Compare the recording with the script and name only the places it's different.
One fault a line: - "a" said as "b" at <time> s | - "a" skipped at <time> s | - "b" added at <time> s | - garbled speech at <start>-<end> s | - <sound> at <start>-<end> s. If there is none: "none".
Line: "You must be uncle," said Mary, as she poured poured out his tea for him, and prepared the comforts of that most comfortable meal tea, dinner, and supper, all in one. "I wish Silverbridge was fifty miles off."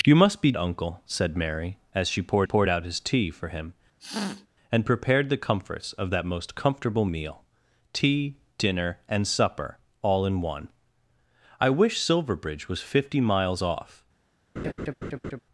- sniff at 4.0-4.5 s
- laugh at 14.6-15.4 s